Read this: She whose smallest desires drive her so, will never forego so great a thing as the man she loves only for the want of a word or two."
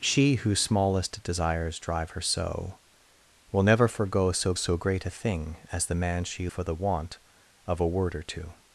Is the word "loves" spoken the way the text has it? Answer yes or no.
no